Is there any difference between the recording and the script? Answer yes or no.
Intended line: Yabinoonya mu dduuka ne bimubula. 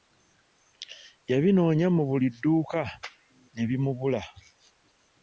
yes